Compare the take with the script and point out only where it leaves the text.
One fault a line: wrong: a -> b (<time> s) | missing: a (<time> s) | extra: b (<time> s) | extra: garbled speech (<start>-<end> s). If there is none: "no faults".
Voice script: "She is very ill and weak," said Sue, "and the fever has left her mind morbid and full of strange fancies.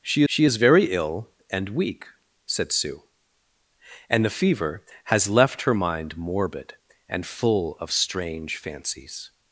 extra: she (0.2 s)